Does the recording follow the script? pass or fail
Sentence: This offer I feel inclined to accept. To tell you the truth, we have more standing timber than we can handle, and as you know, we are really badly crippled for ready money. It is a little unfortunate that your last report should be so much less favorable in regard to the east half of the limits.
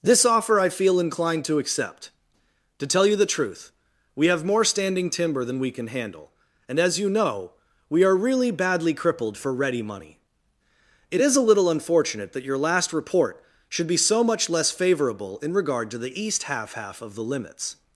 fail